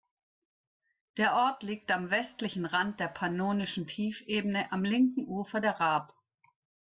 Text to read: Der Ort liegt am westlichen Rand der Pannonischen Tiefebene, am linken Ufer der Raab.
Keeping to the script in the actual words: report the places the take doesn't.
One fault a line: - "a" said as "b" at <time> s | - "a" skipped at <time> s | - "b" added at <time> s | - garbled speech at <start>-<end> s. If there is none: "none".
none